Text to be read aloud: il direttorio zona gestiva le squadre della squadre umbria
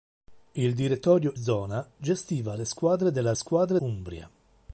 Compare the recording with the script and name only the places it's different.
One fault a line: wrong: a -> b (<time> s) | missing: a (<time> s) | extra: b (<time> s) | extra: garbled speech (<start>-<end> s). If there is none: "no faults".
no faults